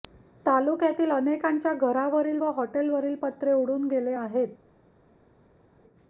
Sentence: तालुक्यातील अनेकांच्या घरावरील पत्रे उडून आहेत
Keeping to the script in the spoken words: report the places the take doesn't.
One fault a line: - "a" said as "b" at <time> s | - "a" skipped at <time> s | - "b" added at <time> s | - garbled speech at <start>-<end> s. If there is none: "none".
- "व हॉटेलवरील" added at 2.4 s
- "गेले" added at 3.9 s